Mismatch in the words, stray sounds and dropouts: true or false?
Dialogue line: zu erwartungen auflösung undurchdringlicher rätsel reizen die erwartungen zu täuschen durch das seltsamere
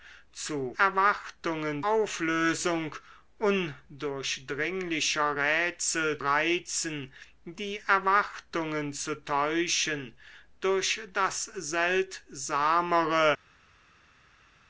false